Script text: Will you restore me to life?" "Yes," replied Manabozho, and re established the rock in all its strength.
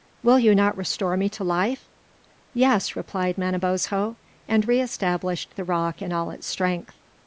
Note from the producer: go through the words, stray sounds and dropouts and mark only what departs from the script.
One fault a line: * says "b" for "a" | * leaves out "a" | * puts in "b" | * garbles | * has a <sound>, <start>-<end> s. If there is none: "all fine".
* puts in "not"